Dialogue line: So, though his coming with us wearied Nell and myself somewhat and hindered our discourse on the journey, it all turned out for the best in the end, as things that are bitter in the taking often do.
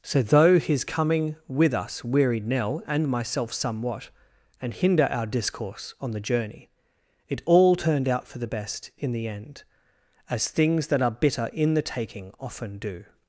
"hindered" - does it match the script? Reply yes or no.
no